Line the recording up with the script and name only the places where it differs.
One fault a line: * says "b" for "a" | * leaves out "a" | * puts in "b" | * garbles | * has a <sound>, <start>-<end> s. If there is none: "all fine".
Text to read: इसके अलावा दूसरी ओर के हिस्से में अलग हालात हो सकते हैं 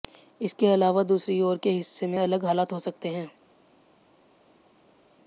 all fine